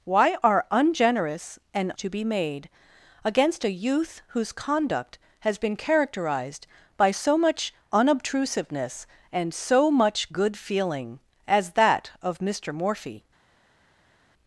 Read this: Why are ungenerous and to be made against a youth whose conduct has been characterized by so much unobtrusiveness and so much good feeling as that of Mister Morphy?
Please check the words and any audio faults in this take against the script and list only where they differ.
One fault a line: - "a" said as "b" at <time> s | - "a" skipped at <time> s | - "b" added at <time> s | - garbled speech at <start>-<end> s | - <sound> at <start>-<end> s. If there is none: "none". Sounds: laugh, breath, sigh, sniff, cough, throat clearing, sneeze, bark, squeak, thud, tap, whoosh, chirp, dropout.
none